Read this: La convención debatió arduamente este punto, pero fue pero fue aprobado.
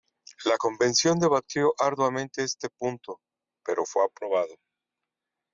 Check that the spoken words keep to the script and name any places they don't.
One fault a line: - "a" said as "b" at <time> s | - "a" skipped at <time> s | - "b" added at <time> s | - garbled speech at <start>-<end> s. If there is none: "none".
- "pero fue" skipped at 4.0 s